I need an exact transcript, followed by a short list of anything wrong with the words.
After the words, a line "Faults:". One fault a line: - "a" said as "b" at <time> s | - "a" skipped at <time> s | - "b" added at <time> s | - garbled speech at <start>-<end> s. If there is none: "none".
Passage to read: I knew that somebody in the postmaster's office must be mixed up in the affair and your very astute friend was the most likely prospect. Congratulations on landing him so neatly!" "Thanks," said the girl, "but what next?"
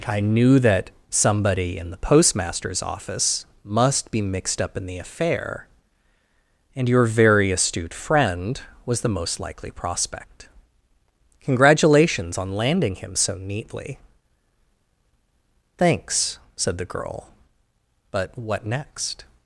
I knew that somebody in the postmaster's office must be mixed up in the affair and your very astute friend was the most likely prospect. Congratulations on landing him so neatly!" "Thanks," said the girl, "but what next?"
Faults:
none